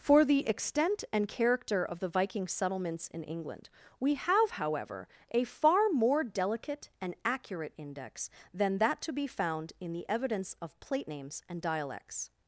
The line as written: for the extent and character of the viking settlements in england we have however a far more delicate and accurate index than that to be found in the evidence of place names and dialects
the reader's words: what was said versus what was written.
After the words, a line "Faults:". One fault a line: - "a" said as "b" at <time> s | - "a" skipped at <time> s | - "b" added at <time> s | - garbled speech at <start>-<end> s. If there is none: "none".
for the extent and character of the viking settlements in england we have however a far more delicate and accurate index than that to be found in the evidence of plate names and dialects
Faults:
- "place" said as "plate" at 10.8 s